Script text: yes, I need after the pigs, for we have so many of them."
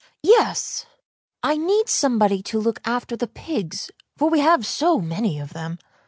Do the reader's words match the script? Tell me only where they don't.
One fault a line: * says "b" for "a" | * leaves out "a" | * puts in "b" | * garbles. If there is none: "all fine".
* puts in "somebody to look"